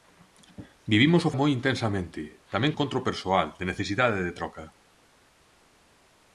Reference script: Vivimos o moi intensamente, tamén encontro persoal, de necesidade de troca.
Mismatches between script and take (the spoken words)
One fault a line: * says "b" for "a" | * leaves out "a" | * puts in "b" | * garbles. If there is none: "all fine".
all fine